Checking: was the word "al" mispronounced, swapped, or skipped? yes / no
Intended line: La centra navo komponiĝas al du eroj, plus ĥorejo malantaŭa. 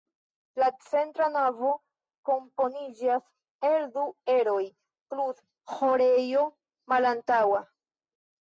yes